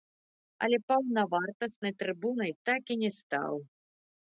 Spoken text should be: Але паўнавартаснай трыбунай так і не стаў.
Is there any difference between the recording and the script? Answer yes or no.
no